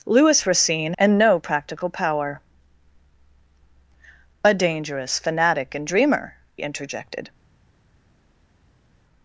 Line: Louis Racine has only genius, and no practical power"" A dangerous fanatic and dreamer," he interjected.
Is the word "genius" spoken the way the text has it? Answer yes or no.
no